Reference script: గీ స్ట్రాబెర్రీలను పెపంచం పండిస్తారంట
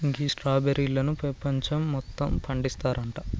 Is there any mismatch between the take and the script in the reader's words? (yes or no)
yes